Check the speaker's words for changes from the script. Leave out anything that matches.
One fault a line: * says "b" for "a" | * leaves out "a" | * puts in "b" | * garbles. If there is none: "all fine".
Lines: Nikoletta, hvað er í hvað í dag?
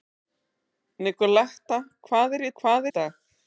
all fine